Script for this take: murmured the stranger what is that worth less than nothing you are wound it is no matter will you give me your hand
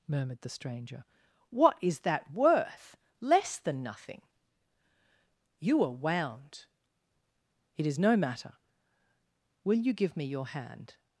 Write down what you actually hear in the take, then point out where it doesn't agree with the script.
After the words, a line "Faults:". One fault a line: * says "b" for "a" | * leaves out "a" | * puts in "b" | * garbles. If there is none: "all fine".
murmured the stranger what is that worth less than nothing you are wound it is no matter will you give me your hand
Faults:
all fine